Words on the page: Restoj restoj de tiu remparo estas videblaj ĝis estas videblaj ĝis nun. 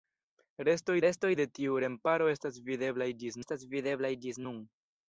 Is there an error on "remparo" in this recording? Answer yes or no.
no